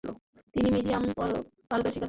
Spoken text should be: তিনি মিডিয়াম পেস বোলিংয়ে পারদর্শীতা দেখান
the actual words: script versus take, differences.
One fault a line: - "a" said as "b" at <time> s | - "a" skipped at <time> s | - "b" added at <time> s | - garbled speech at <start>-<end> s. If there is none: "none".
- "পেস বোলিংয়ে" skipped at 1.0 s